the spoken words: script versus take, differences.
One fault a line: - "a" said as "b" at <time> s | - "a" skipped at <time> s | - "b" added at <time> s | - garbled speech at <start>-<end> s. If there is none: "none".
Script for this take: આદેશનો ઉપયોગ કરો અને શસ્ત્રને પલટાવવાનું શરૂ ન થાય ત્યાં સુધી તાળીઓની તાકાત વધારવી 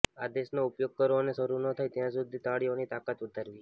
- "શસ્ત્રને પલટાવવાનું" skipped at 1.4 s